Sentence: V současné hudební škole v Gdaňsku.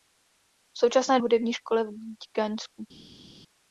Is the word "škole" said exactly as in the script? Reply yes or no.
yes